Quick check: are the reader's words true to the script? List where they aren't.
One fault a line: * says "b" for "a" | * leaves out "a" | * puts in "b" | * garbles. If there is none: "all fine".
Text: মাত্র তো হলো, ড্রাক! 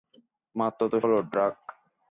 all fine